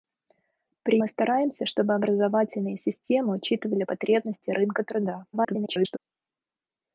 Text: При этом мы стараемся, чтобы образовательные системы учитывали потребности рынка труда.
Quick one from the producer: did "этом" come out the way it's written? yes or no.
no